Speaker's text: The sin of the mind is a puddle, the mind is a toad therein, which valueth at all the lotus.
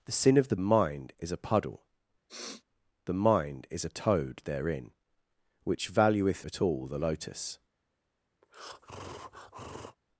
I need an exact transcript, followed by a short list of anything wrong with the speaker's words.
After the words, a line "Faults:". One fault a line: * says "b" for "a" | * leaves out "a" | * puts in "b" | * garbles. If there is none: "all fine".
The sin of the mind is a puddle, the mind is a toad therein, which valueth at all the lotus.
Faults:
all fine